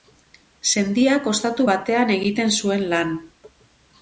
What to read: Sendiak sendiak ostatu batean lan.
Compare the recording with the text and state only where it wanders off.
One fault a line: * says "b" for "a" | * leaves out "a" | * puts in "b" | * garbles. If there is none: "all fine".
* leaves out "sendiak"
* puts in "egiten zuen"